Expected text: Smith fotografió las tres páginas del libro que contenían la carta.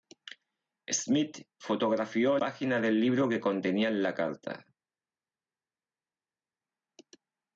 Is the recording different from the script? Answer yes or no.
yes